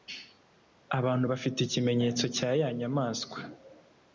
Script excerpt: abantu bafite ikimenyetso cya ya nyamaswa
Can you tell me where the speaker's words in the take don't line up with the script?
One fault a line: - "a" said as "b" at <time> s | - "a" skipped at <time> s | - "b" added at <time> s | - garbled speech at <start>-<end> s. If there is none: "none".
none